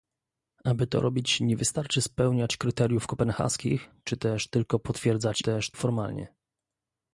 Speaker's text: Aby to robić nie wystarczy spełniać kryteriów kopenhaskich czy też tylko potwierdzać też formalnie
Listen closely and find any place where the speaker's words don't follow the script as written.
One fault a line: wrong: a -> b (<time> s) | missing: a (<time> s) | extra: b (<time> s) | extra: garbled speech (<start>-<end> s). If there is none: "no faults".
no faults